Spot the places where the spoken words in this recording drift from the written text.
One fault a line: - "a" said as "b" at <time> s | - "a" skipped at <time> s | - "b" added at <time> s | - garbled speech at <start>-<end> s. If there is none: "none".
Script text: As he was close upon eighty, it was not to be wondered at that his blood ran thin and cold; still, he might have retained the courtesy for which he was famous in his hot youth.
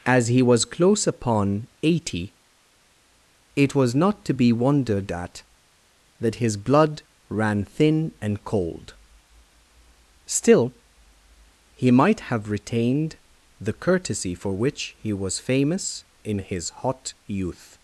none